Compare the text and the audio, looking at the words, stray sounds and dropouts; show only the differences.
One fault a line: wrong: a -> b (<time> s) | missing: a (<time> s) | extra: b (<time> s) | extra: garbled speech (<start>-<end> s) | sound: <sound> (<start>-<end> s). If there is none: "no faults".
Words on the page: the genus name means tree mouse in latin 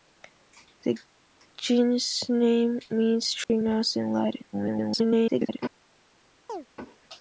sound: dropout (3.4-3.5 s)
extra: garbled speech (4.5-5.6 s)
sound: chirp (6.5-6.7 s)